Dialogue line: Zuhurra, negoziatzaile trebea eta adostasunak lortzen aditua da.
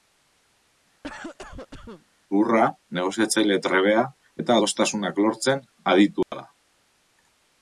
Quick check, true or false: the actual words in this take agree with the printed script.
true